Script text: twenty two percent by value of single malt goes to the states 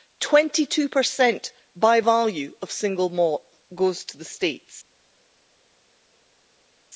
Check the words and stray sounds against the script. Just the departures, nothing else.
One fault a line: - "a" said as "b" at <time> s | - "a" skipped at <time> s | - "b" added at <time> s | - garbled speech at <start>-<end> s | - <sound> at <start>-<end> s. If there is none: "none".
none